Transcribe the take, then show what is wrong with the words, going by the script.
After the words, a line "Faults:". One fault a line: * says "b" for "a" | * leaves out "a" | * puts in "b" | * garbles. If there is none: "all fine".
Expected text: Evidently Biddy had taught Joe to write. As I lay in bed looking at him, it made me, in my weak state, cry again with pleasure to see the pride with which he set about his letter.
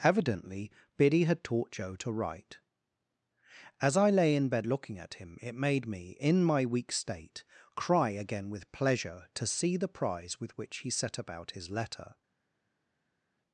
Evidently Biddy had taught Joe to write. As I lay in bed looking at him, it made me, in my weak state, cry again with pleasure to see the prize with which he set about his letter.
Faults:
* says "prize" for "pride"